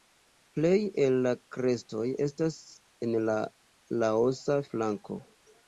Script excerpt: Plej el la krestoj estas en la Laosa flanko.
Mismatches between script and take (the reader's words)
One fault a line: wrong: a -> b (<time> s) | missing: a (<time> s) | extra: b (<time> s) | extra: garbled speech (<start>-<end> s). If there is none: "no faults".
no faults